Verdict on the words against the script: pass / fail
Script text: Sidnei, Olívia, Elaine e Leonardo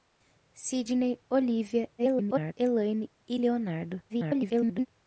fail